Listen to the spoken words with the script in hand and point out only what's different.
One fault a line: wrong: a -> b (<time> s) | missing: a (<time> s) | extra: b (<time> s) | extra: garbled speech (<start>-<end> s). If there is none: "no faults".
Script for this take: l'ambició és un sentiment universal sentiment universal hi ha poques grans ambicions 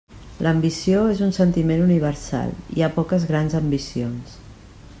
missing: sentiment universal (2.5 s)